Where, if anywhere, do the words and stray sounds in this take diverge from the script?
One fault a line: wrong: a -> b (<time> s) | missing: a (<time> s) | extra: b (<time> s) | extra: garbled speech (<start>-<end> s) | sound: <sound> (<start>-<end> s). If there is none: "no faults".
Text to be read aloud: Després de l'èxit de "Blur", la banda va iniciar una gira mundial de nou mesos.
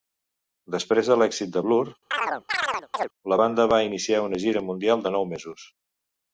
sound: chirp (2.1-3.1 s)